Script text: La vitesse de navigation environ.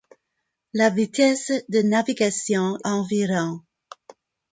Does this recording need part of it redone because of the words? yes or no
no